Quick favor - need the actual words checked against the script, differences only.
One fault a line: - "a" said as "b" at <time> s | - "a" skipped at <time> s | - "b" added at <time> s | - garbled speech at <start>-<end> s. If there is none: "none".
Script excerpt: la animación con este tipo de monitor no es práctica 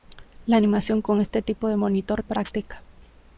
- "no" skipped at 2.2 s